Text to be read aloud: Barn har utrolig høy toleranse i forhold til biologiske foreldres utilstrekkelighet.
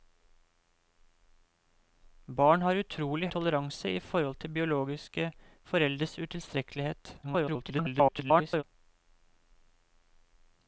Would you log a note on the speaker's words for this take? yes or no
yes